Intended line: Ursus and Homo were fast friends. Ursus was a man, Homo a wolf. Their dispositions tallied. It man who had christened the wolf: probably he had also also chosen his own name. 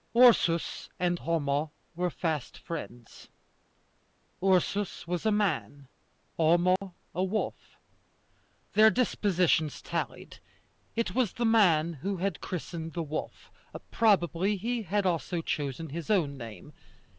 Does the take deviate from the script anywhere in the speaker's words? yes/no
yes